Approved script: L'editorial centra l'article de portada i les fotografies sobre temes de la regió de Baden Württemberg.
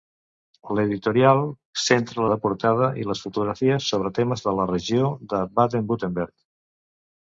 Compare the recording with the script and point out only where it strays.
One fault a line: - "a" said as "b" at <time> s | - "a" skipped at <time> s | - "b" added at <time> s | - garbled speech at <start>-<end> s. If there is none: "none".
- "l'article" skipped at 2.2 s